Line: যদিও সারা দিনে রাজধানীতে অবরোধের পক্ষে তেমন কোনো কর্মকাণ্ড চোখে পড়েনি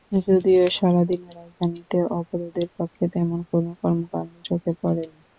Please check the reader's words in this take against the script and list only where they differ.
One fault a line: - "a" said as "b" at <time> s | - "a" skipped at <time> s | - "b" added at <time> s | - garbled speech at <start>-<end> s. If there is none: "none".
none